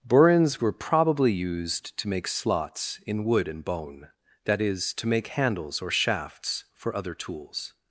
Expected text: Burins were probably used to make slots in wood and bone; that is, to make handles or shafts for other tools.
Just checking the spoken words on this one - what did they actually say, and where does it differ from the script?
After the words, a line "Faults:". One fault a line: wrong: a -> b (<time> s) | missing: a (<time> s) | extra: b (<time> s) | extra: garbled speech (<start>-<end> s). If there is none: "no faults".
Burins were probably used to make slots in wood and bone; that is, to make handles or shafts for other tools.
Faults:
no faults